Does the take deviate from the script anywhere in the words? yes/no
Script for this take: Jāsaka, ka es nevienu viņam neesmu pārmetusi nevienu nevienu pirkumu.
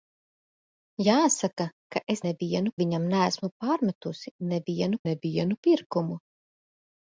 no